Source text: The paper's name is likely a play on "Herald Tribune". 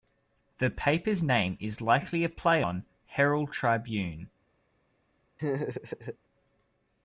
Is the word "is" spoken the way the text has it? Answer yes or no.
yes